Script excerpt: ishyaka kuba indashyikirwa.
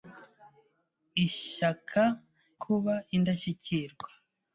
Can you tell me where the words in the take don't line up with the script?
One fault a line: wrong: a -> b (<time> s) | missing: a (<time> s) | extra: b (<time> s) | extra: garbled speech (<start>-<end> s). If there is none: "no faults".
no faults